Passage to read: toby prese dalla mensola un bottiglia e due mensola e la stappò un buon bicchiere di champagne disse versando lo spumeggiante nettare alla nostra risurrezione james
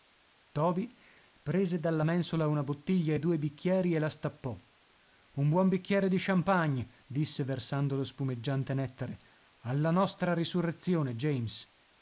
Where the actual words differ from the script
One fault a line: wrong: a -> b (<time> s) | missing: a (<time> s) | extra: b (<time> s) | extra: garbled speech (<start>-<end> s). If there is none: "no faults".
wrong: un -> una (2.5 s)
wrong: mensola -> bicchieri (3.4 s)